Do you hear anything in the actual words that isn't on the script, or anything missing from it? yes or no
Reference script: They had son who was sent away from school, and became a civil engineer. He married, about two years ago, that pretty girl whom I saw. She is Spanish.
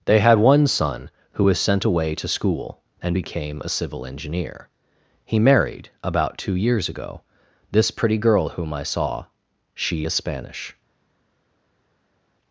yes